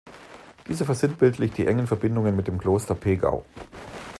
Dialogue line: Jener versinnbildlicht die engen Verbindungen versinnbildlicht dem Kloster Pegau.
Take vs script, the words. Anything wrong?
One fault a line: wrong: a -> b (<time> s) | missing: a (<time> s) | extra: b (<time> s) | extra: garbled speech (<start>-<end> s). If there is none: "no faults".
wrong: Jener -> Dieser (0.7 s)
wrong: versinnbildlicht -> mit (2.3 s)